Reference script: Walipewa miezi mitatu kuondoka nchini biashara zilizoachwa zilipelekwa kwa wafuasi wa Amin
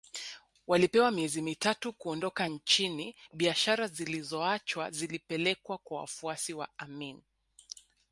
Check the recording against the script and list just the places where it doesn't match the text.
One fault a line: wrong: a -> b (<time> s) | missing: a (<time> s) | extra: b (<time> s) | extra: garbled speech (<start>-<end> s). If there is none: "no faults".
no faults